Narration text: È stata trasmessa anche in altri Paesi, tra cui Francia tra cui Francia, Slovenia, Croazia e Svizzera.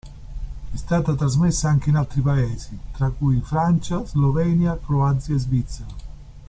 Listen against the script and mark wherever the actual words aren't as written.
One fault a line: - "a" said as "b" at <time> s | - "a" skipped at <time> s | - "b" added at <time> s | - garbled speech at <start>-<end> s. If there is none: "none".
- "tra cui Francia" skipped at 4.0 s